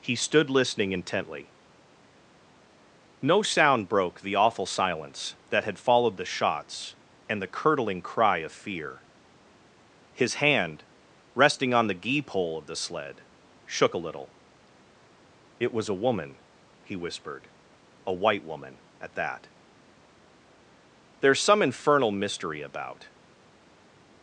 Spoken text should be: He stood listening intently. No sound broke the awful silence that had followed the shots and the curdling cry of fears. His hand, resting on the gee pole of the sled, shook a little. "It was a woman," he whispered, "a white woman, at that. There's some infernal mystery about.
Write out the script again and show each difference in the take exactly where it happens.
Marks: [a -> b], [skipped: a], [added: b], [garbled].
He stood listening intently. No sound broke the awful silence that had followed the shots and the curdling cry of [fears. -> fear] His hand, resting on the gee pole of the sled, shook a little. "It was a woman," he whispered, "a white woman, at that. There's some infernal mystery about.